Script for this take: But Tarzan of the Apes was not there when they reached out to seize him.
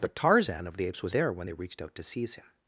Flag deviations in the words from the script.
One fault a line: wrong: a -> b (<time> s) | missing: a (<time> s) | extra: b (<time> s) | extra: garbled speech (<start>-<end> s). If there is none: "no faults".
missing: not (1.1 s)